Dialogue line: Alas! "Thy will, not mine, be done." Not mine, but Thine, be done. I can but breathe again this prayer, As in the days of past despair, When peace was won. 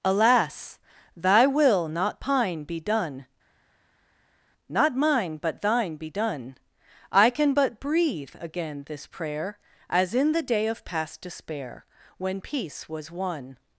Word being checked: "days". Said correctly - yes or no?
no